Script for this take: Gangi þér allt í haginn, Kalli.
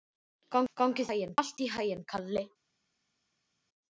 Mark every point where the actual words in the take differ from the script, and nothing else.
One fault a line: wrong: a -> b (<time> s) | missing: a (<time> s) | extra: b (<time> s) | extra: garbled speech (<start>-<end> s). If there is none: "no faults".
wrong: þér -> haginn (1.1 s)